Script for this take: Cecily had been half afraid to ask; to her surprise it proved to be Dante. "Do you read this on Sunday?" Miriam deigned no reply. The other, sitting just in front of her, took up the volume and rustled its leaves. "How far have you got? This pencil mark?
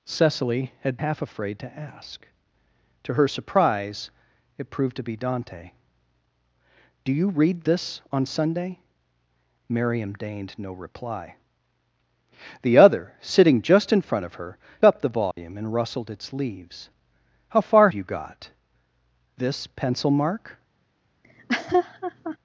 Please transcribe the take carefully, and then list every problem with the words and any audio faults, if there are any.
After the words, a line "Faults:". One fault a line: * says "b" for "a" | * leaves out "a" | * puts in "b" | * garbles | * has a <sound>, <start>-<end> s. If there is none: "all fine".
Cecily had half afraid to ask; to her surprise it proved to be Dante. "Do you read this on Sunday?" Miriam deigned no reply. The other, sitting just in front of her, up the volume and rustled its leaves. "How far you got? This pencil mark?
Faults:
* leaves out "been"
* leaves out "took"
* has a dropout, 15.3-15.4 s
* leaves out "have"
* has a laugh, 21.2-22.4 s